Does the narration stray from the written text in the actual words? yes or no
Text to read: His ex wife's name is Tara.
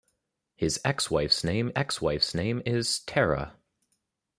yes